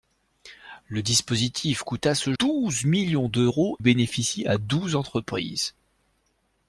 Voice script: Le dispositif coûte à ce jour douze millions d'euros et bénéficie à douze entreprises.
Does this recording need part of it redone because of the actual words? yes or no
yes